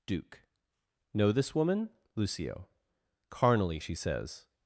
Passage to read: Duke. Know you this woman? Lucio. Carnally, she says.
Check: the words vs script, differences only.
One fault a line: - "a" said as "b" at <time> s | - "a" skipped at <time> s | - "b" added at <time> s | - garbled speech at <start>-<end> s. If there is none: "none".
- "you" skipped at 1.3 s